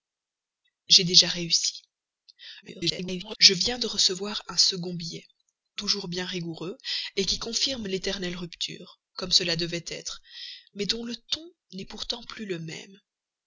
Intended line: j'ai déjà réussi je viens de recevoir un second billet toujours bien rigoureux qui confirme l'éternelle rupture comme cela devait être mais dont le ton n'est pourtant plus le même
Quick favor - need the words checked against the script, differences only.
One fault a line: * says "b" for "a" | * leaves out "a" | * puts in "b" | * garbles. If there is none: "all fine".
* garbles